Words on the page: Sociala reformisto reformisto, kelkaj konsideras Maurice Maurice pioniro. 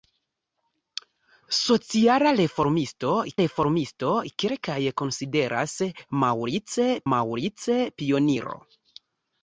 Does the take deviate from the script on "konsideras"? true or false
false